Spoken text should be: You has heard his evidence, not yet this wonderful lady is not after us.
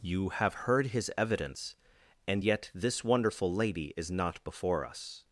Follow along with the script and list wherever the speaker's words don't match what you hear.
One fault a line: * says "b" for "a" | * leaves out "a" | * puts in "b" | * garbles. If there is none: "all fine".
* says "have" for "has"
* says "and" for "not"
* says "before" for "after"